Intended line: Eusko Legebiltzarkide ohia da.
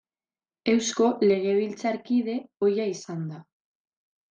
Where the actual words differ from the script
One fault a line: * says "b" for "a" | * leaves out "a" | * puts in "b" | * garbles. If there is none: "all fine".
* puts in "izan"